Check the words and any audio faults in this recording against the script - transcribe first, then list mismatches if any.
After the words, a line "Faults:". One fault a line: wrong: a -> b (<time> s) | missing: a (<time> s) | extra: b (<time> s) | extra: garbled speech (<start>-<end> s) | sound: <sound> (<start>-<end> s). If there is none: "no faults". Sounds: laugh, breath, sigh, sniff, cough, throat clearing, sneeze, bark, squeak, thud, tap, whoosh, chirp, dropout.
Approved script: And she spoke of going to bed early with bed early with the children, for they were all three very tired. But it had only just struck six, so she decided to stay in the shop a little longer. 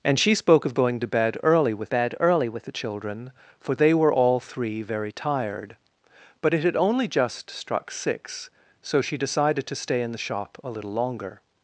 And she spoke of going to bed early with bed early with the children, for they were all three very tired. But it had only just struck six, so she decided to stay in the shop a little longer.
Faults:
no faults